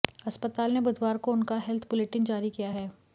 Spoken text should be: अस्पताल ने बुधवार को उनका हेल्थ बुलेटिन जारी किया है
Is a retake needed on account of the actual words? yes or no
no